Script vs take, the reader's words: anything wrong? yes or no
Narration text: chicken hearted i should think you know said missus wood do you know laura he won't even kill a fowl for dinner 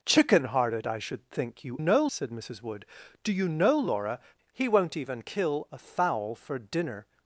no